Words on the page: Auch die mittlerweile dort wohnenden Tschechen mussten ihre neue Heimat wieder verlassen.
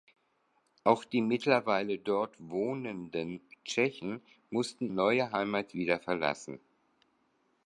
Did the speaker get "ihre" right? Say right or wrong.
wrong